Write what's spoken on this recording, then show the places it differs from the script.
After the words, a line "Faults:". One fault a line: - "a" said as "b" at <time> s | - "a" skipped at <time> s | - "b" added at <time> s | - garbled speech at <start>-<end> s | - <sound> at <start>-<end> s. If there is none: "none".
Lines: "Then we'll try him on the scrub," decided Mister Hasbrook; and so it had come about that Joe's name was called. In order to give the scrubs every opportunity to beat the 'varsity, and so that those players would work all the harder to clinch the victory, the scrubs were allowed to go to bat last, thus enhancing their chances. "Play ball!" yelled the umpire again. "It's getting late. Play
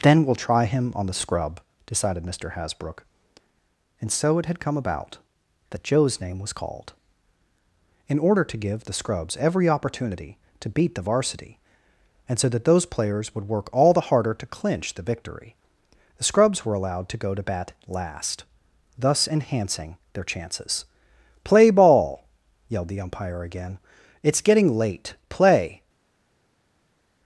"Then we'll try him on the scrub," decided Mister Hasbrook; and so it had come about that Joe's name was called. In order to give the scrubs every opportunity to beat the 'varsity, and so that those players would work all the harder to clinch the victory, the scrubs were allowed to go to bat last, thus enhancing their chances. "Play ball!" yelled the umpire again. "It's getting late. Play
Faults:
none